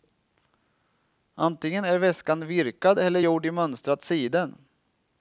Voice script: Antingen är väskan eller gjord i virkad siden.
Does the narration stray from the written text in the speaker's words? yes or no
yes